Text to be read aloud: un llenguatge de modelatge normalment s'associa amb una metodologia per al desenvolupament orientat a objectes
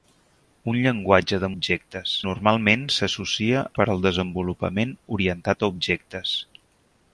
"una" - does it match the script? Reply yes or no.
no